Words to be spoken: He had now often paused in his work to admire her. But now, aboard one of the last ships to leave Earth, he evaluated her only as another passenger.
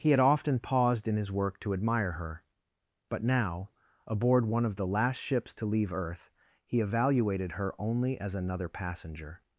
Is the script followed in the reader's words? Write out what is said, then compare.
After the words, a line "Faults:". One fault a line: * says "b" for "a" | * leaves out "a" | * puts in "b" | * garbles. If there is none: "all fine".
He had often paused in his work to admire her. But now, aboard one of the last ships to leave Earth, he evaluated her only as another passenger.
Faults:
* leaves out "now"